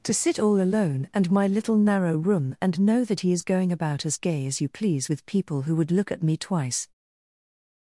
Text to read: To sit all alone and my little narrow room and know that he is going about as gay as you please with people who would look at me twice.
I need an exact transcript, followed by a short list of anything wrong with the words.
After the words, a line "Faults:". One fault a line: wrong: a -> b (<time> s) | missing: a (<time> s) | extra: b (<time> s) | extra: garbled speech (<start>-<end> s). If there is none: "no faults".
To sit all alone and my little narrow room and know that he is going about as gay as you please with people who would look at me twice.
Faults:
no faults